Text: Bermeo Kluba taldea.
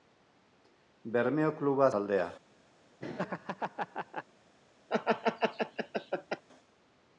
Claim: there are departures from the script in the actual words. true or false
false